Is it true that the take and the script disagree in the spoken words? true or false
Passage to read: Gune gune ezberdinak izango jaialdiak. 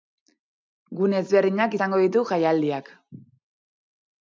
true